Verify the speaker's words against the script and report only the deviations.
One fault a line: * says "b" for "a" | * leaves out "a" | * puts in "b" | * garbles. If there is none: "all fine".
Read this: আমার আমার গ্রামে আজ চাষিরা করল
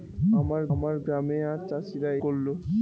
all fine